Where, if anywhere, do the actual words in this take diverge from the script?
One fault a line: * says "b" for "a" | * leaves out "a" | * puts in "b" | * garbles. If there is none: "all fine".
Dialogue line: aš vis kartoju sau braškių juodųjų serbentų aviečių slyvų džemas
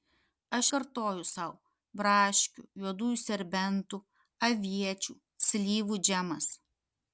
* leaves out "vis"